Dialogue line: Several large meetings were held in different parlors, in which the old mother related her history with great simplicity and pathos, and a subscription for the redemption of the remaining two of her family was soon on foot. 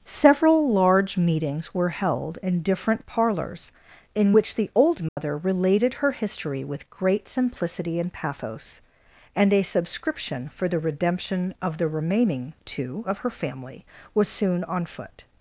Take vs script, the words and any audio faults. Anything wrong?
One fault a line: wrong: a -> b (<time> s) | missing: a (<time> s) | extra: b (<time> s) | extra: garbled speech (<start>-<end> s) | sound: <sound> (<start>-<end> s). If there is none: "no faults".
sound: dropout (5.1-5.2 s)